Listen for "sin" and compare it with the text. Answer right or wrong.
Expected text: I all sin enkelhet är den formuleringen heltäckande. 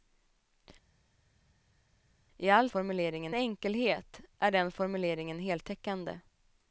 wrong